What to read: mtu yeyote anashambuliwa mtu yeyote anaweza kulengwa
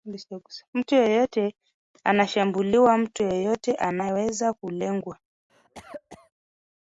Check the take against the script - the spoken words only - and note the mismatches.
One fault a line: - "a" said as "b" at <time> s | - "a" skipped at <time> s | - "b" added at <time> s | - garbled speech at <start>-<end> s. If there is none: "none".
none